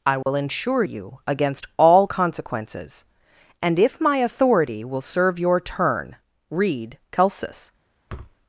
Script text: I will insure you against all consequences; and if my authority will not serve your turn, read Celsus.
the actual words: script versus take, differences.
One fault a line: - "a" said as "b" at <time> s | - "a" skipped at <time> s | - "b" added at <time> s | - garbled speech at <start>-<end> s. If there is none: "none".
- "not" skipped at 5.0 s